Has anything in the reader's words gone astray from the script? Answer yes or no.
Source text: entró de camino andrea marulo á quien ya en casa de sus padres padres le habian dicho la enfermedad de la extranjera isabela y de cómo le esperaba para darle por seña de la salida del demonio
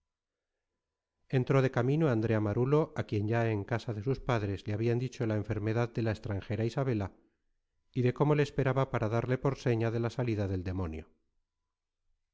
yes